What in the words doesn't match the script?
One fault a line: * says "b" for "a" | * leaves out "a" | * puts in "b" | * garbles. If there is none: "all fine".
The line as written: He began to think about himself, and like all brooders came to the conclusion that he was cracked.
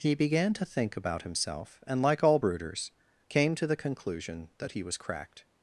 all fine